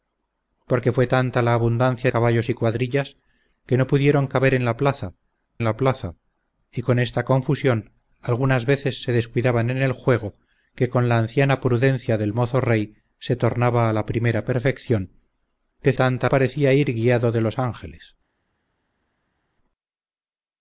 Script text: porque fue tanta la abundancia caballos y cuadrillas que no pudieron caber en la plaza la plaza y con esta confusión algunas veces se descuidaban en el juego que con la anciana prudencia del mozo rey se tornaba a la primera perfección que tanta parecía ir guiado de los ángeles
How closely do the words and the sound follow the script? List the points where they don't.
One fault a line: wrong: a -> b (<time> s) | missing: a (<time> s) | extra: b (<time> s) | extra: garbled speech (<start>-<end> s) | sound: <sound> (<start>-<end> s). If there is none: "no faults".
no faults